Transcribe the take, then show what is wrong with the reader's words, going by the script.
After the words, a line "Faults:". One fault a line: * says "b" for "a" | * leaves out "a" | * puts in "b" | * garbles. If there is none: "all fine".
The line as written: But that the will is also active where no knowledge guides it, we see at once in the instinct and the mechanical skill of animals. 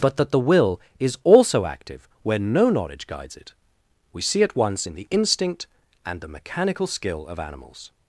But that the will is also active where no knowledge guides it, we see at once in the instinct and the mechanical skill of animals.
Faults:
all fine